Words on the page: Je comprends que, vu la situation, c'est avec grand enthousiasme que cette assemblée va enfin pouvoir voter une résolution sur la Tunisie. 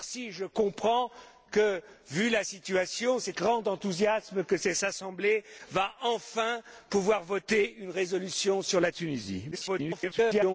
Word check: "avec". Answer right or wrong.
wrong